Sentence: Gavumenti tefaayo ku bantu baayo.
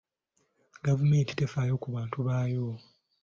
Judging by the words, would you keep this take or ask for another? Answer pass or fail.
pass